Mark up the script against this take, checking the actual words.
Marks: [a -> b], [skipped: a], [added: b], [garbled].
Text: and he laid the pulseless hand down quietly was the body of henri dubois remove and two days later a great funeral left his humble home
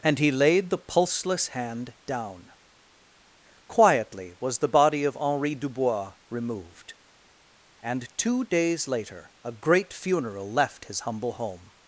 and he laid the pulseless hand down quietly was the body of henri dubois [remove -> removed] and two days later a great funeral left his humble home